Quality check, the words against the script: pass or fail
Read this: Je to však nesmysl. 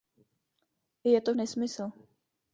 fail